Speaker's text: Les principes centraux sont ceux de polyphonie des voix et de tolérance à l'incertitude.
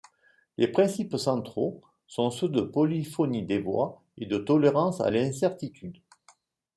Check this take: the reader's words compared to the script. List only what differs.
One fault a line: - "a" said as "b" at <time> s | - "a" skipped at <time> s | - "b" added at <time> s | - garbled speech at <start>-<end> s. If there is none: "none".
none